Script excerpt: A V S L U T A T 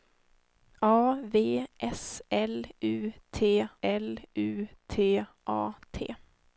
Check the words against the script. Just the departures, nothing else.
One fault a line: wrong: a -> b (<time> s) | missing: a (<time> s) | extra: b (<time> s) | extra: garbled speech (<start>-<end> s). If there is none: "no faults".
extra: L U T (3.8 s)